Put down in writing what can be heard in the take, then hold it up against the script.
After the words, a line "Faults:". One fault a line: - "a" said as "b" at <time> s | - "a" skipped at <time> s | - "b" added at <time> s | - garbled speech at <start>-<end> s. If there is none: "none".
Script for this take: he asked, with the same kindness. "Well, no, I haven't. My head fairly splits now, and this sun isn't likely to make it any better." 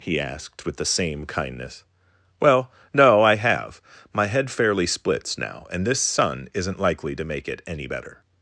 he asked, with the same kindness. "Well, no, I have. My head fairly splits now, and this sun isn't likely to make it any better."
Faults:
- "haven't" said as "have" at 3.4 s